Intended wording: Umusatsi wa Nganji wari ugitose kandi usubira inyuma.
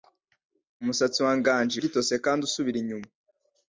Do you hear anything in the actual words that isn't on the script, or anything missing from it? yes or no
yes